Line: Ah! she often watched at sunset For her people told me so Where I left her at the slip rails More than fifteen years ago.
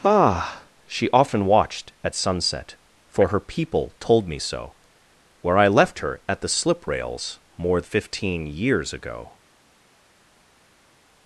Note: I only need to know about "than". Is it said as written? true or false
false